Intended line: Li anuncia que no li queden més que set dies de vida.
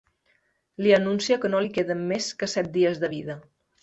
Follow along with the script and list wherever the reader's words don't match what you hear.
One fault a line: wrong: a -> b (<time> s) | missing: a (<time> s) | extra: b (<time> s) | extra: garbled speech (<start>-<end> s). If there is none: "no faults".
no faults